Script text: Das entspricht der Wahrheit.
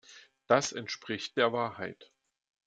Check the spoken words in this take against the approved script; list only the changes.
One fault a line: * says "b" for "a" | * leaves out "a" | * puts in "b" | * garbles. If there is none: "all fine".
all fine